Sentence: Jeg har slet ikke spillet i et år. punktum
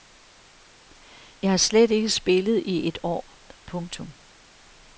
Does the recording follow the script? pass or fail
pass